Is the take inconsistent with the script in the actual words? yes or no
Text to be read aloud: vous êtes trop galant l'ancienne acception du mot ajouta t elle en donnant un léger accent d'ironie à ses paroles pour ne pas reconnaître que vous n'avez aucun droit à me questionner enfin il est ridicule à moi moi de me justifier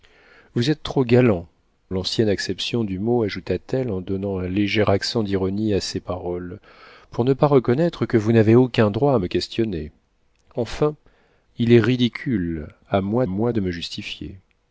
no